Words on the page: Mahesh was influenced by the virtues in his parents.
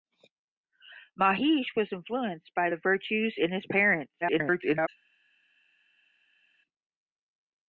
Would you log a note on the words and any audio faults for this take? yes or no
yes